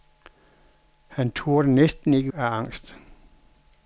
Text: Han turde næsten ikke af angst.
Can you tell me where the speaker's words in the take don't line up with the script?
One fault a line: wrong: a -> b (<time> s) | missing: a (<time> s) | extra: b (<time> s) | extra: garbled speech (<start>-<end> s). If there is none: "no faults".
no faults